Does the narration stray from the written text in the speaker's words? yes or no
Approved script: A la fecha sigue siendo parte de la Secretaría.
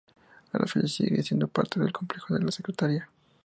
yes